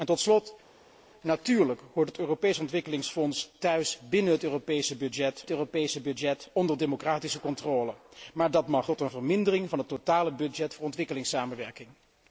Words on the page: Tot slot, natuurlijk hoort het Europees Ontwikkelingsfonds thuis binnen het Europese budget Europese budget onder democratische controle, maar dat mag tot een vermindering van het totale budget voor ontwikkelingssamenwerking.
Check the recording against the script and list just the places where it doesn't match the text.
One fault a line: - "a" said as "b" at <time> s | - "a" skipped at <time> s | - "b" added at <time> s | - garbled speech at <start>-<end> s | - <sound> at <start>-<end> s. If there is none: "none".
none